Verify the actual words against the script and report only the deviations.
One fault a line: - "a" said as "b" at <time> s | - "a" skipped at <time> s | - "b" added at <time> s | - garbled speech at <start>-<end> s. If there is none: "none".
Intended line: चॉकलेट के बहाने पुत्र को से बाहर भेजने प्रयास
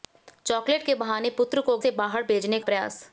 none